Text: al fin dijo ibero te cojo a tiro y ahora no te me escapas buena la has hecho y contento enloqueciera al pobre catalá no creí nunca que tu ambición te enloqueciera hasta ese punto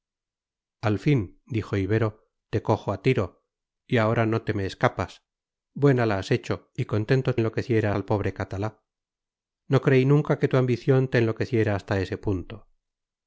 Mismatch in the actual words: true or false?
false